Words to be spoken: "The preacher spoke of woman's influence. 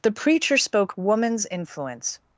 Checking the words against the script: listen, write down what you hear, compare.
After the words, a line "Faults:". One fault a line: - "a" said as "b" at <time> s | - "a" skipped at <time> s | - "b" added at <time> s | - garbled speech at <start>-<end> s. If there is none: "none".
"The preacher spoke woman's influence.
Faults:
- "of" skipped at 0.9 s